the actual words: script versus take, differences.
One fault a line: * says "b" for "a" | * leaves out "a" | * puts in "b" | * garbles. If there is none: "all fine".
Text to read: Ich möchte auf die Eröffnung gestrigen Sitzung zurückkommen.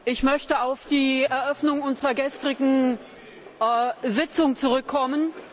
* puts in "unserer"